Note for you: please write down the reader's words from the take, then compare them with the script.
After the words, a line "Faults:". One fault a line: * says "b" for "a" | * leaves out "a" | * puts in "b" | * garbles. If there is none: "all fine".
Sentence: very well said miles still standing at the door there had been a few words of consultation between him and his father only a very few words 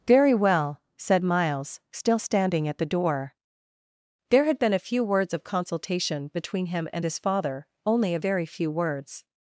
very well said miles still standing at the door there had been a few words of consultation between him and his father only a very few words
Faults:
all fine